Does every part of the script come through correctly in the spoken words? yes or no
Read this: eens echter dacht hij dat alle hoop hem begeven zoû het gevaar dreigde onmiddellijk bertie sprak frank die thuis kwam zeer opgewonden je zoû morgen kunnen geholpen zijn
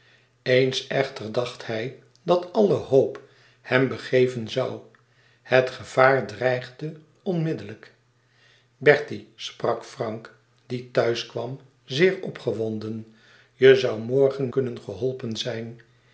yes